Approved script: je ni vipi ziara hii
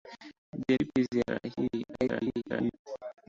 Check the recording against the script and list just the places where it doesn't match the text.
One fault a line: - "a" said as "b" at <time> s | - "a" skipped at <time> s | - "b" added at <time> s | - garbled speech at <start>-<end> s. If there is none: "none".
- "ni" skipped at 0.8 s
- garbled speech at 1.9-2.7 s